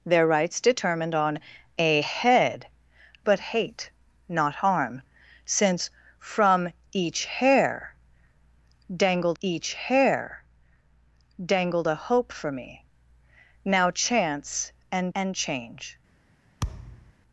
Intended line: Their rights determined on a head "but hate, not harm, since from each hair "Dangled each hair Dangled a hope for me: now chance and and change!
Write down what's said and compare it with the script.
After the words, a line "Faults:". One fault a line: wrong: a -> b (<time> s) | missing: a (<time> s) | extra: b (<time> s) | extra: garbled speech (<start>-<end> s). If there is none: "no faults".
Their rights determined on a head "but hate, not harm, since from each hair "Dangled each hair Dangled a hope for me: now chance and and change!
Faults:
no faults